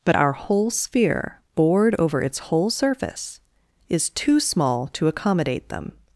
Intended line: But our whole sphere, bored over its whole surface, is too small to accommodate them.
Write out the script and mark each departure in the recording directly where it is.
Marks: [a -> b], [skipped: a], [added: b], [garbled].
But our whole sphere, bored over its whole surface, is too small to accommodate them.